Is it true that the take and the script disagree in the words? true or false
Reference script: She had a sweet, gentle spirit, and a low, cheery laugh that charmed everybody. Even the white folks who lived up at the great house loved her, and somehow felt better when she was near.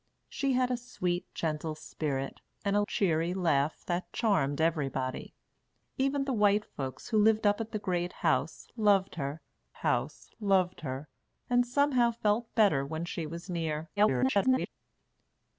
true